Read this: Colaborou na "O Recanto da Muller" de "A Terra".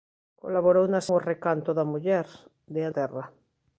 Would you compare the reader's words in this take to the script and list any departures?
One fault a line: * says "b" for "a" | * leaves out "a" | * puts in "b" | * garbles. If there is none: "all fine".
all fine